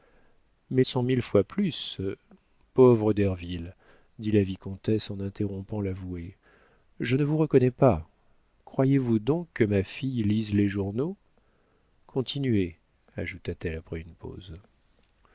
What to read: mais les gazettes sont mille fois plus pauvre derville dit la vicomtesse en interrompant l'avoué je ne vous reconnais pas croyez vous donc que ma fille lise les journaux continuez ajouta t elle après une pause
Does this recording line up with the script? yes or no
no